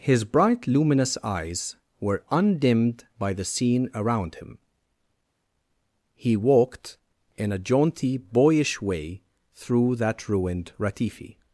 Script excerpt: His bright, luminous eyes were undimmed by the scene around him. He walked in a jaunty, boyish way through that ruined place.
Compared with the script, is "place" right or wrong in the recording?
wrong